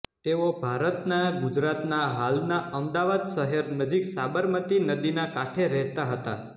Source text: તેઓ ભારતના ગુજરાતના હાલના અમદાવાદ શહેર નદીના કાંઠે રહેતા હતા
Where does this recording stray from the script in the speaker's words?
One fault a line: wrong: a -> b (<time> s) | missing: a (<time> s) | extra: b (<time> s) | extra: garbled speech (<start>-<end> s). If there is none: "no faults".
extra: નજીક સાબરમતી (3.8 s)